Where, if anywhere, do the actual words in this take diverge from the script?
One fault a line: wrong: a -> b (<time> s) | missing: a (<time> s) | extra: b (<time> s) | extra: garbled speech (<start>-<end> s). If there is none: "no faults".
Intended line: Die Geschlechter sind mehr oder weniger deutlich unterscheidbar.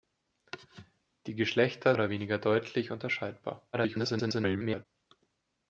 missing: sind mehr (1.9 s)
extra: garbled speech (3.7-4.9 s)